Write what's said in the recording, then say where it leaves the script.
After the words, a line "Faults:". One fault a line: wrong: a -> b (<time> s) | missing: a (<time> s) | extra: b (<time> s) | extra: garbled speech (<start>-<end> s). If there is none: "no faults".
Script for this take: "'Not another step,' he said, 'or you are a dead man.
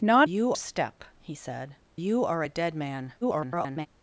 "'Not you step,' he said, 'you are a dead man. [garbled]
Faults:
wrong: another -> you (0.2 s)
missing: or (1.8 s)
extra: garbled speech (3.2-3.9 s)